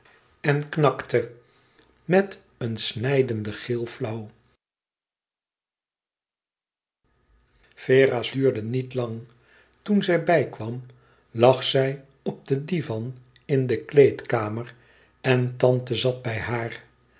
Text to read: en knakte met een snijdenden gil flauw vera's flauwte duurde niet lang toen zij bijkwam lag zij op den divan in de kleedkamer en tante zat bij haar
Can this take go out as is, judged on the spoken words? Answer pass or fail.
fail